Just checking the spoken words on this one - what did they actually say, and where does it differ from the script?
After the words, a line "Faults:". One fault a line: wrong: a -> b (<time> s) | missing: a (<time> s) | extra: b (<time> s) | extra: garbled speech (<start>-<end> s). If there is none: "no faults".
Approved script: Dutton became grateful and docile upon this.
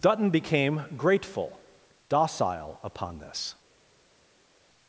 Dutton became grateful docile upon this.
Faults:
missing: and (1.6 s)